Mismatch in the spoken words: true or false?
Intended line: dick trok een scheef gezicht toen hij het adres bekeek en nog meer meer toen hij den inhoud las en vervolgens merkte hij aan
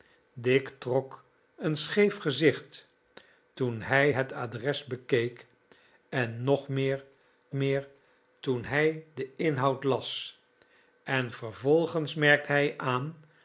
false